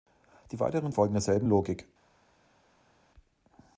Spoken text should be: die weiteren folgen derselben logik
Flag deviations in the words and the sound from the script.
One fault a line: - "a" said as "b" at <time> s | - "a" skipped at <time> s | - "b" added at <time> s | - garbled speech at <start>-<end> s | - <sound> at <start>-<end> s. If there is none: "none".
none